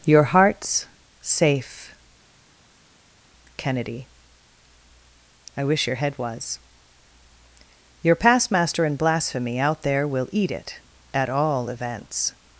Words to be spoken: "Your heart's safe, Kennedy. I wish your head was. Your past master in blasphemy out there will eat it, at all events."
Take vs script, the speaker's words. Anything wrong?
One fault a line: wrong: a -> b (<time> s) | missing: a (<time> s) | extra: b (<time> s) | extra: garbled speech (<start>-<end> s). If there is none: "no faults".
no faults